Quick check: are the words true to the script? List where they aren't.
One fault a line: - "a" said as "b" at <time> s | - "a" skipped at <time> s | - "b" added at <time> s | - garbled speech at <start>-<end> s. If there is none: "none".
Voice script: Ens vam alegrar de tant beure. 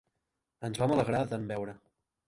none